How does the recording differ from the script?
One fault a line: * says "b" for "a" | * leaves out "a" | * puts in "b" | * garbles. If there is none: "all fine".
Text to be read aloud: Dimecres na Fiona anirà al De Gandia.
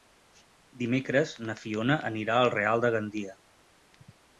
* puts in "Real"